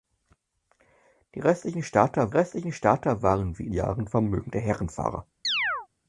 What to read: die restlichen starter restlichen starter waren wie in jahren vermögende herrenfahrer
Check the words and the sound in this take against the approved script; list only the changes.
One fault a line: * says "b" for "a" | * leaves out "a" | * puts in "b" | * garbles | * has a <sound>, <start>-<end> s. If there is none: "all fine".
* has a chirp, 5.4-5.9 s